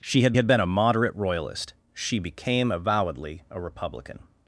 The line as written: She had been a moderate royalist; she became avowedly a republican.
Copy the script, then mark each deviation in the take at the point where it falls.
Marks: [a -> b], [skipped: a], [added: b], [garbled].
She had [added: had] been a moderate royalist; she became avowedly a republican.